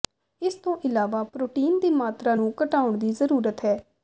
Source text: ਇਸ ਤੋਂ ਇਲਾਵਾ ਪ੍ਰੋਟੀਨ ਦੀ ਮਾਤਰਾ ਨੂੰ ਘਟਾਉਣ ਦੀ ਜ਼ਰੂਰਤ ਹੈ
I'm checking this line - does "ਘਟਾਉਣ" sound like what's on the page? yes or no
yes